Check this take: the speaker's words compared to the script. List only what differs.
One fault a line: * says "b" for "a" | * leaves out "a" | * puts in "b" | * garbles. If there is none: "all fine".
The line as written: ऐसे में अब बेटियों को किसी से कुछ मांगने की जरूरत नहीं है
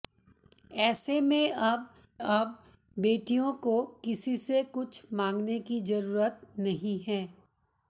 * puts in "अब"